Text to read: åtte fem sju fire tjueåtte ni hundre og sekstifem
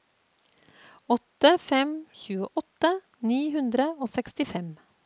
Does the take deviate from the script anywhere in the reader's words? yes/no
yes